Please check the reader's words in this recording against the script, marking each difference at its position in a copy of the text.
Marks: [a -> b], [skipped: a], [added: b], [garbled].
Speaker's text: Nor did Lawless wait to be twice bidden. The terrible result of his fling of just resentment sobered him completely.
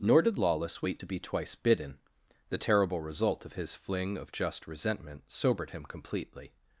Nor did Lawless wait to be twice bidden. The terrible result of his fling of just resentment sobered him completely.